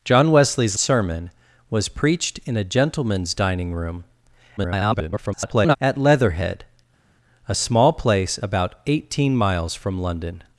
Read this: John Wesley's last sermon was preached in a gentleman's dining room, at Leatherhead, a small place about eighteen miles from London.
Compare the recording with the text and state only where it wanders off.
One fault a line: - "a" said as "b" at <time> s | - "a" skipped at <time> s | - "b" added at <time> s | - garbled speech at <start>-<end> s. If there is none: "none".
- "last" skipped at 0.8 s
- garbled speech at 4.6-5.8 s